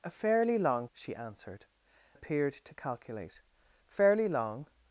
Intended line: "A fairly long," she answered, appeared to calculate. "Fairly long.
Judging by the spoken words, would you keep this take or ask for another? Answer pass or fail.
pass